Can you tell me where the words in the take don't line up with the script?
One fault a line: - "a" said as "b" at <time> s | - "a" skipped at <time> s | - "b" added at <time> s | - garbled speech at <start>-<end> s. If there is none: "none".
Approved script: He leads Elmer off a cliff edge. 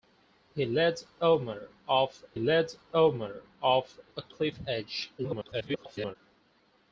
- "leads Elmer off" added at 2.4 s
- garbled speech at 5.2-6.2 s